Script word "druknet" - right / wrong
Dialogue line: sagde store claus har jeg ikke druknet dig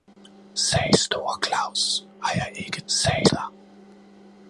wrong